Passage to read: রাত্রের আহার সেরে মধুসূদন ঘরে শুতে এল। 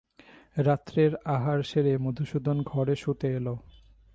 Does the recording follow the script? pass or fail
pass